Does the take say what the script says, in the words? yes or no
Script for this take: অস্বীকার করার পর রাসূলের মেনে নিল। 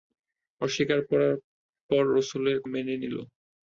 yes